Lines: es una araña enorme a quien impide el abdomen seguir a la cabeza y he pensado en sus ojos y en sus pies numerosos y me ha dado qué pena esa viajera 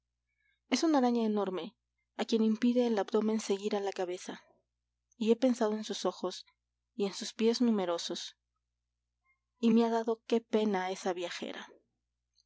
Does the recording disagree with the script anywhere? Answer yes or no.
no